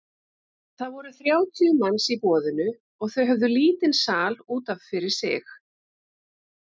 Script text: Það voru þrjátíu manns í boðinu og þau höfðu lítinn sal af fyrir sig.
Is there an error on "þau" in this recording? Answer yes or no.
no